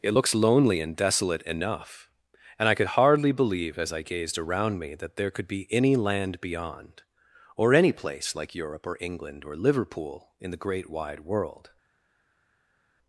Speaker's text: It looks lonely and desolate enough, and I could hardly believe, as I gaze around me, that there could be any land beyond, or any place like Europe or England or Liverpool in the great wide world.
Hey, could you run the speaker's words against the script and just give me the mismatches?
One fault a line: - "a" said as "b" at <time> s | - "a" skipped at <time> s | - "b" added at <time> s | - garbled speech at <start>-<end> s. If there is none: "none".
- "gaze" said as "gazed" at 4.0 s